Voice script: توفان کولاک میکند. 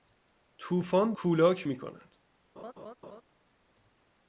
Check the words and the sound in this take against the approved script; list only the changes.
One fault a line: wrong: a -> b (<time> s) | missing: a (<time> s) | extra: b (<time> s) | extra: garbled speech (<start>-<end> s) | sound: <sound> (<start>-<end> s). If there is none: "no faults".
sound: laugh (2.6-3.2 s)